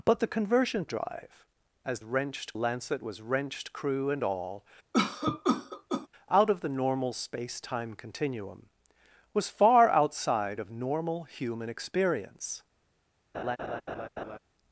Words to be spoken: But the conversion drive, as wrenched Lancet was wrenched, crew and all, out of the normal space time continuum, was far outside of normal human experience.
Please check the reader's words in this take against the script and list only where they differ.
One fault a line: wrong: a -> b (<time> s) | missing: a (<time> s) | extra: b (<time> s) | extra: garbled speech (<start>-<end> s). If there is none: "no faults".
no faults